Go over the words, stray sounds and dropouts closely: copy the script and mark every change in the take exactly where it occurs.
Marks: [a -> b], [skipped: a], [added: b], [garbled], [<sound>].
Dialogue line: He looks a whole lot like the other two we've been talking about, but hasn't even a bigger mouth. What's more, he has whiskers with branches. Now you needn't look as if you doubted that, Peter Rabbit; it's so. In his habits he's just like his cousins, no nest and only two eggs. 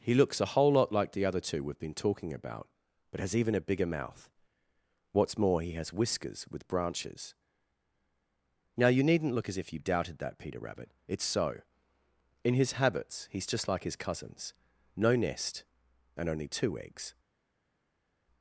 He looks a whole lot like the other two we've been talking about, but [hasn't -> has] even a bigger mouth. What's more, he has whiskers with branches. Now you needn't look as if you doubted that, Peter Rabbit; it's so. In his habits he's just like his cousins, no nest and only two eggs.